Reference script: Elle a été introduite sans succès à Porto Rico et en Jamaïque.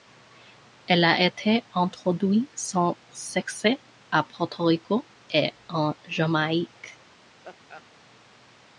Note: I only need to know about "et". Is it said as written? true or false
true